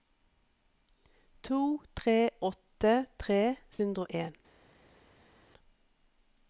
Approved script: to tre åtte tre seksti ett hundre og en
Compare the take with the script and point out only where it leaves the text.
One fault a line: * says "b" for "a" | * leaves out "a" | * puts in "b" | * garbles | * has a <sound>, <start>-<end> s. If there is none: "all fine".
* leaves out "seksti ett"